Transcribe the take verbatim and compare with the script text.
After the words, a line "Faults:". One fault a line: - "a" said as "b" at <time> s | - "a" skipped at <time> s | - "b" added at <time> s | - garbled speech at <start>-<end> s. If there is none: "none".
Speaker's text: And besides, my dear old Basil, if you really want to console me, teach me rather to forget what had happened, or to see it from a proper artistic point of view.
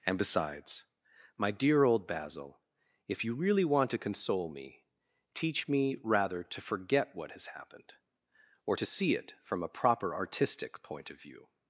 And besides, my dear old Basil, if you really want to console me, teach me rather to forget what has happened, or to see it from a proper artistic point of view.
Faults:
- "had" said as "has" at 7.3 s